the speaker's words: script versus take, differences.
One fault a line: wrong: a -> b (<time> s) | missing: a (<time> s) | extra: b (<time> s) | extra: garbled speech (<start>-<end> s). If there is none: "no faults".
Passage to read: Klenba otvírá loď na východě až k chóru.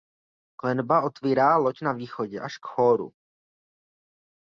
no faults